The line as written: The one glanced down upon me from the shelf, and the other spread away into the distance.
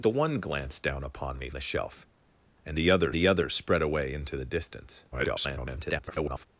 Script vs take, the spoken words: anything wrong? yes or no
yes